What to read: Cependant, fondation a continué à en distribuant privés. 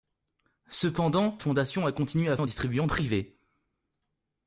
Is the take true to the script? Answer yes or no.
yes